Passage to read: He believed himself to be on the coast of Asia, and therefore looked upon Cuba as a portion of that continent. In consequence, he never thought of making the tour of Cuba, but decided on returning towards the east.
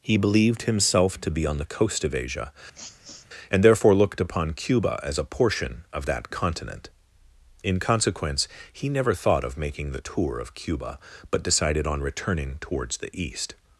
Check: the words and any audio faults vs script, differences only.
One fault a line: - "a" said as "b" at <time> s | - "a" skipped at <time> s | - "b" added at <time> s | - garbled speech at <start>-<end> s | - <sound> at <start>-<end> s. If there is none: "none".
- sniff at 2.7-3.3 s